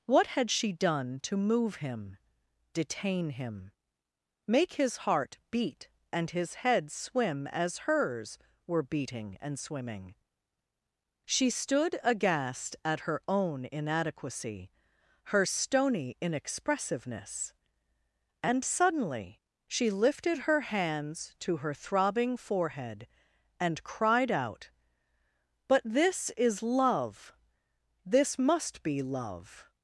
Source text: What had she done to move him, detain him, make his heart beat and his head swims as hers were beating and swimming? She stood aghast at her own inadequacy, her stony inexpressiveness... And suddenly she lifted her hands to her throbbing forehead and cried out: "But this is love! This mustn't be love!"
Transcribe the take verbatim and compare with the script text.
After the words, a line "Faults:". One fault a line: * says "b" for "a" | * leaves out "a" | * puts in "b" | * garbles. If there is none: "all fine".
What had she done to move him, detain him, make his heart beat and his head swim as hers were beating and swimming? She stood aghast at her own inadequacy, her stony inexpressiveness... And suddenly she lifted her hands to her throbbing forehead and cried out: "But this is love! This must be love!"
Faults:
* says "swim" for "swims"
* says "must" for "mustn't"